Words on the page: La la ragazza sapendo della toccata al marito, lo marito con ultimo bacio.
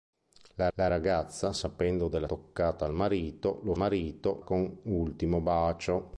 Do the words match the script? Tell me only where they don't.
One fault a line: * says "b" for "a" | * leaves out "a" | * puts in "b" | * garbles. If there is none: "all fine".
all fine